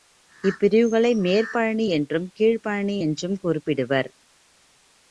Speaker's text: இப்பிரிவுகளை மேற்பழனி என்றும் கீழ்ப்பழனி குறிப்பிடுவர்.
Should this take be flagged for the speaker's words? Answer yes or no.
yes